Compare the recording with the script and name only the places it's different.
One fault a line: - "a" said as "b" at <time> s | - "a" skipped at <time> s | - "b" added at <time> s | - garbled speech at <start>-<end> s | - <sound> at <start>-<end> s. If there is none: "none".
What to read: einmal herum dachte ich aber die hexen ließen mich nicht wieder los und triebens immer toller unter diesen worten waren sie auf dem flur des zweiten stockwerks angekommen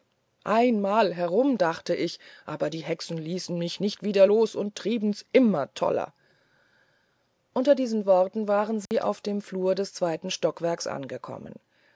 - dropout at 8.9-8.9 s